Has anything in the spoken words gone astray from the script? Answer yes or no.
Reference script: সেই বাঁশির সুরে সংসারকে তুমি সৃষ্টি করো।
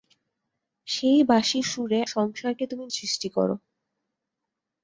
no